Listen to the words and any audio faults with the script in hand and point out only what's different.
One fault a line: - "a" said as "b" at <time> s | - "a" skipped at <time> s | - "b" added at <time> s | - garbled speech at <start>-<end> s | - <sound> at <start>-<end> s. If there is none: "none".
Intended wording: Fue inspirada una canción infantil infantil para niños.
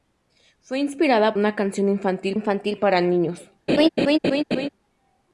- laugh at 3.7-4.7 s